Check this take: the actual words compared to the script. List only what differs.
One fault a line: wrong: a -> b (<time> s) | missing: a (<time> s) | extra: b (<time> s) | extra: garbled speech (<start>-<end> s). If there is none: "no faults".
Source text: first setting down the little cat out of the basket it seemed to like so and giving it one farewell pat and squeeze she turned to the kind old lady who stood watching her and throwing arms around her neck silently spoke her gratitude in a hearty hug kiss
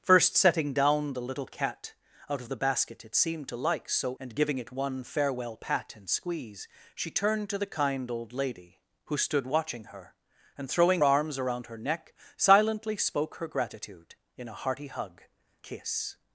no faults